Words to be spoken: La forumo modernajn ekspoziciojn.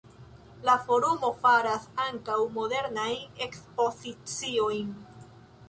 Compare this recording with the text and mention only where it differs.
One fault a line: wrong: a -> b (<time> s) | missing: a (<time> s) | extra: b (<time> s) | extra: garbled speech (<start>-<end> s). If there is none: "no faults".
extra: faras ankaŭ (1.4 s)